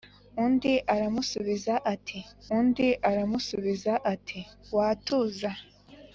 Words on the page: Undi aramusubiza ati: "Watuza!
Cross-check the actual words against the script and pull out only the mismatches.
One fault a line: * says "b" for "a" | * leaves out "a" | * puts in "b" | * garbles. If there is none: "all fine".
* puts in "undi aramusubiza ati"